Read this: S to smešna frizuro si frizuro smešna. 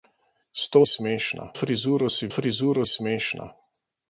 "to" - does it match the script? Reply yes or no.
yes